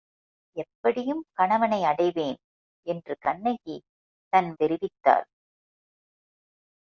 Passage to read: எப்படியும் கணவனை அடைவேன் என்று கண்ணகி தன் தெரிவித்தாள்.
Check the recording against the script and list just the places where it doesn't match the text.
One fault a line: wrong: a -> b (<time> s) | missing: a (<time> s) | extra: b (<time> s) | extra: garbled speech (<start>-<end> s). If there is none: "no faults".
no faults